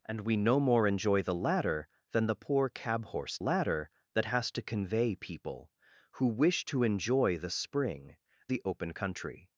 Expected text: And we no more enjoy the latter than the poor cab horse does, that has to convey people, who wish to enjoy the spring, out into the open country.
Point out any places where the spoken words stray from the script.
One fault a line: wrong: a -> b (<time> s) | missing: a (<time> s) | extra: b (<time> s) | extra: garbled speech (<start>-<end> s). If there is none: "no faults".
wrong: does -> latter (3.4 s)
missing: out into (8.2 s)